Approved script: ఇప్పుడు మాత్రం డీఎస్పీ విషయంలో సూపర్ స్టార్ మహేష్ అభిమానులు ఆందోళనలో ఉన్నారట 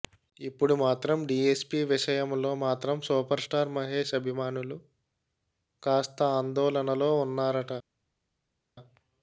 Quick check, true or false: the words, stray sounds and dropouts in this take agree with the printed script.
false